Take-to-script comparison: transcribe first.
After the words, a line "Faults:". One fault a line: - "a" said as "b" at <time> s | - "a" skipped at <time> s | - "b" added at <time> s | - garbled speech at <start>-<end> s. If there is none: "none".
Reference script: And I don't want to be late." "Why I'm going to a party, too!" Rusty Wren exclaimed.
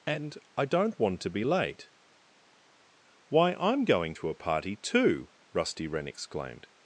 And I don't want to be late." "Why I'm going to a party, too!" Rusty Wren exclaimed.
Faults:
none